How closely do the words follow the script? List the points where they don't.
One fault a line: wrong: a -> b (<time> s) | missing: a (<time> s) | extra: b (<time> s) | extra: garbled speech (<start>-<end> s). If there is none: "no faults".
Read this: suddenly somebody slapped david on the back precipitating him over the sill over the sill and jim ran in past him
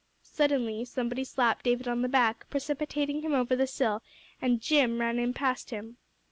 missing: over the sill (4.0 s)